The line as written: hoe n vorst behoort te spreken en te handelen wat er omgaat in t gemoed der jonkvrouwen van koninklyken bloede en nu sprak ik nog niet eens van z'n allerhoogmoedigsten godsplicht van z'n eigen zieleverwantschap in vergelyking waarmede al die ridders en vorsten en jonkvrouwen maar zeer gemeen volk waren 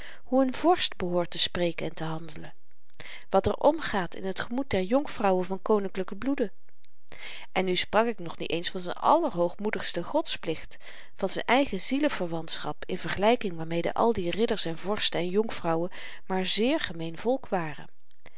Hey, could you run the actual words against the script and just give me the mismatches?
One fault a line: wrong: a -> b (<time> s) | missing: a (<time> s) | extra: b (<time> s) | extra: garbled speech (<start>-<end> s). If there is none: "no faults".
no faults